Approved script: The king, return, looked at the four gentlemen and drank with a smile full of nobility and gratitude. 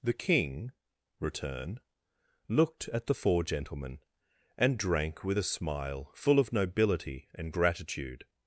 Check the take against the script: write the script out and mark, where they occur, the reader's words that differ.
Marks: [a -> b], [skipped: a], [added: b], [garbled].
The king, return, looked at the four gentlemen and drank with a smile full of nobility and gratitude.